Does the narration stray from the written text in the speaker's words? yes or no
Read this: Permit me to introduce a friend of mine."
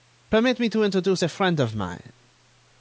no